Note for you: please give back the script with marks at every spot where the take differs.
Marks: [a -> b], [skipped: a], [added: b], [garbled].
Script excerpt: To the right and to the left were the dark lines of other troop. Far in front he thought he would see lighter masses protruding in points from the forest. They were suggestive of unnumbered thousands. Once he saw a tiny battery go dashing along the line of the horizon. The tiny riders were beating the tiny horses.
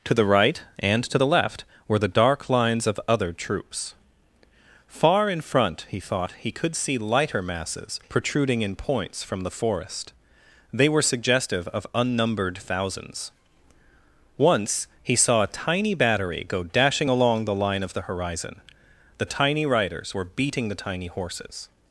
To the right and to the left were the dark lines of other [troop. -> troops] Far in front he thought he [would -> could] see lighter masses protruding in points from the forest. They were suggestive of unnumbered thousands. Once he saw a tiny battery go dashing along the line of the horizon. The tiny riders were beating the tiny horses.